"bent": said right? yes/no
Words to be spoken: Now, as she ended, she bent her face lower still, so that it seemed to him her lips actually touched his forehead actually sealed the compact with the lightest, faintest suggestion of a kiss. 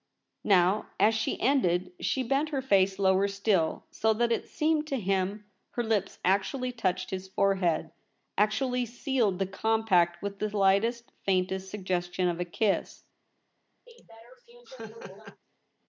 yes